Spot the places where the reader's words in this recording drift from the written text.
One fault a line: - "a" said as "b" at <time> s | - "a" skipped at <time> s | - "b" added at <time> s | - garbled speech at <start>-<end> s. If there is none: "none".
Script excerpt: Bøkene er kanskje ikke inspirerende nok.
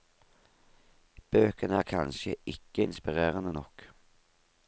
none